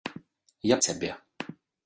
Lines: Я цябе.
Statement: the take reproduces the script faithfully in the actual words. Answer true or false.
true